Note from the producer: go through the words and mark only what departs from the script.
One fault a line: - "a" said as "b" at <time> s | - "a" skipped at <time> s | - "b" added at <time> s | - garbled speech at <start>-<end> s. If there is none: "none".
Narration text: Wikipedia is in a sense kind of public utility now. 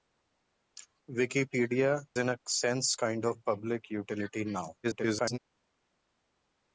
- "is" skipped at 2.1 s
- garbled speech at 4.8-5.4 s